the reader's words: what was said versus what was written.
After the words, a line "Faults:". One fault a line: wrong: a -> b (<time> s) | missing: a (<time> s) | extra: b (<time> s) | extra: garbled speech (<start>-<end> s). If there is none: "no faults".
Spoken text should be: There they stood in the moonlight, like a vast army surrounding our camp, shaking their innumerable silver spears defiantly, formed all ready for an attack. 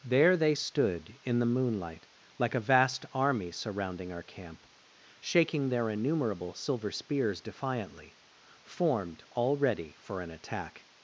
There they stood in the moonlight, like a vast army surrounding our camp, shaking their innumerable silver spears defiantly, formed all ready for an attack.
Faults:
no faults